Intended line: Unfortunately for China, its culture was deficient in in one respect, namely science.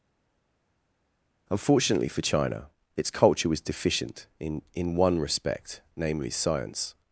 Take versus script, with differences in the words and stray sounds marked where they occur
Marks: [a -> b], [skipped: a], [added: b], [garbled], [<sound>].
Unfortunately for China, its culture was deficient in in one respect, namely science.